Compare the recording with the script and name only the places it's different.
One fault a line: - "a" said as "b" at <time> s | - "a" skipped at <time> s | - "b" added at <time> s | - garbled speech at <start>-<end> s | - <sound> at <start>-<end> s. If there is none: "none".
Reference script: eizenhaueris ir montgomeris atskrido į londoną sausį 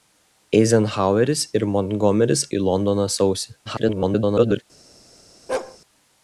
- "atskrido" skipped at 2.5 s
- garbled speech at 3.7-4.6 s
- bark at 5.5-5.8 s